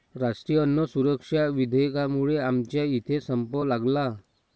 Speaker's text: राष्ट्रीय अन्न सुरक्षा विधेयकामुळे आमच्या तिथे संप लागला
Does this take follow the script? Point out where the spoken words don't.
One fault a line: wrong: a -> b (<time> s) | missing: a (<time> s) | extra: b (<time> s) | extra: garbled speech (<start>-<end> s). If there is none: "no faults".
wrong: तिथे -> इथे (2.9 s)